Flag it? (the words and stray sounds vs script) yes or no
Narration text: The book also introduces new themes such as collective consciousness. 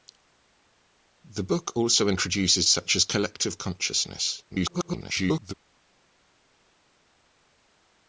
yes